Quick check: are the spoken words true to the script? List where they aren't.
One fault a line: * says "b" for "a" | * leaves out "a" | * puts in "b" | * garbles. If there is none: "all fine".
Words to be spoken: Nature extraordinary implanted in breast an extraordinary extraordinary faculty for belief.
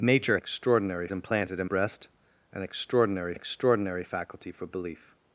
all fine